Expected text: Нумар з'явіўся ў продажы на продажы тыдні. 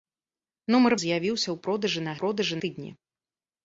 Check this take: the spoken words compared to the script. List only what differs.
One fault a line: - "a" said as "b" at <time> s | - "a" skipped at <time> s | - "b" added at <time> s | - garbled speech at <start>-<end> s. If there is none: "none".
none